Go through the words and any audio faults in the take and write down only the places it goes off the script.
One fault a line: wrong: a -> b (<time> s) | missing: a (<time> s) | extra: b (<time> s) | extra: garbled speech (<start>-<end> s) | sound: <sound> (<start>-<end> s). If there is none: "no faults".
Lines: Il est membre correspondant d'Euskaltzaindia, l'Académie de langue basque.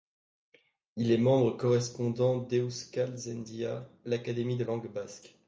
no faults